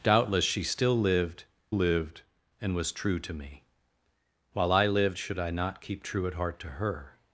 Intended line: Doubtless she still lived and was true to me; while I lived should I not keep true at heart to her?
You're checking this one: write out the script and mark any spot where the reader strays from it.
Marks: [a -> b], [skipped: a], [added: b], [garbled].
Doubtless she still lived [added: lived] and was true to me; while I lived should I not keep true at heart to her?